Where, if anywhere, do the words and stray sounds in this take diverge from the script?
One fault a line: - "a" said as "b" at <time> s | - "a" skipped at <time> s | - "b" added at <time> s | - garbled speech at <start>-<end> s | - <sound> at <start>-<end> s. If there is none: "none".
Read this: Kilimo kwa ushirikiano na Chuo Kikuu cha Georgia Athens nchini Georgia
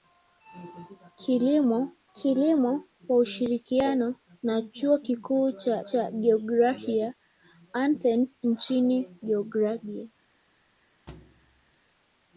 - "kilimo" added at 2.1 s
- "cha" added at 5.8 s
- thud at 11.1-11.8 s